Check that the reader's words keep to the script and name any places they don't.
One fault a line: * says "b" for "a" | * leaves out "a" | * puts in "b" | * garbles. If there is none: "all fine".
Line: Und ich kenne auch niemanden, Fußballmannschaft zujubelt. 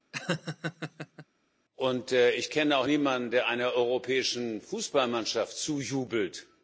* puts in "der einer europäischen"